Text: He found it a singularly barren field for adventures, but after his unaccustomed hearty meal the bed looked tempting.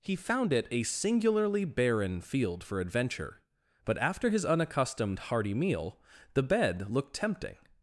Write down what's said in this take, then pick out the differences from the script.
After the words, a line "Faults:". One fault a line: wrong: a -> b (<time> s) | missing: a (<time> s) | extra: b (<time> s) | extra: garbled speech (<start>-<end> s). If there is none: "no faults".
He found it a singularly barren field for adventure, but after his unaccustomed hearty meal the bed looked tempting.
Faults:
wrong: adventures -> adventure (2.8 s)